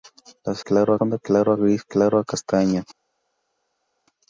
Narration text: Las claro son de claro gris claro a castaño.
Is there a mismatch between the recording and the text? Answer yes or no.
no